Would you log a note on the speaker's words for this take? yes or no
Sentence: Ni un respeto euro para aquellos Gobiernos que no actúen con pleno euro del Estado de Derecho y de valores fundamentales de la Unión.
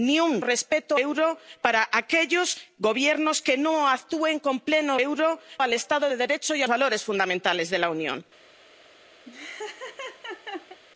no